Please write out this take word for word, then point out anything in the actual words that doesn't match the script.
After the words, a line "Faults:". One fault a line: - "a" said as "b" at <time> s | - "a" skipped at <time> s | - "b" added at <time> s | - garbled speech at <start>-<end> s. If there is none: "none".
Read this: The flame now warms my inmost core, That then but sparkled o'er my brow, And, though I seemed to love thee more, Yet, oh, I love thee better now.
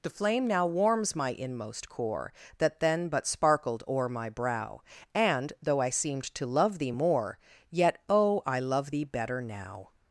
The flame now warms my inmost core, That then but sparkled o'er my brow, And, though I seemed to love thee more, Yet, oh, I love thee better now.
Faults:
none